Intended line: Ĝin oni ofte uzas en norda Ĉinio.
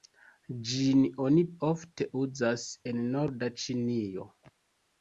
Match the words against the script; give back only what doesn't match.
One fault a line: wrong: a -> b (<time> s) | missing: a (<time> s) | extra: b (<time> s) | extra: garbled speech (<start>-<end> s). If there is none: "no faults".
no faults